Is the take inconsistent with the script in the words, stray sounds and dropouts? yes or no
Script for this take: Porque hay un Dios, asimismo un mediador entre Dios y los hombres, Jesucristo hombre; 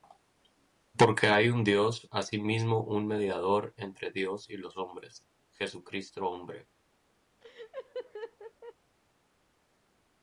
yes